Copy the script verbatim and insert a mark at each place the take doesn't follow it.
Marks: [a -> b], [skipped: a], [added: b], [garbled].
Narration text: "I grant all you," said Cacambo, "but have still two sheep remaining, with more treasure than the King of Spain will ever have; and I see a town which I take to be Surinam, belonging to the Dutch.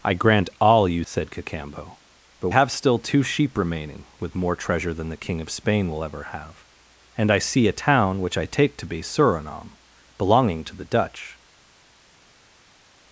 "I grant all you," said Cacambo, "but have still two sheep remaining, with more treasure than the King of Spain will ever have; and I see a town which I take to be Surinam, belonging to the Dutch.